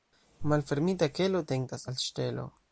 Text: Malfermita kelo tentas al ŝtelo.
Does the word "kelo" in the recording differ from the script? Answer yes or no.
no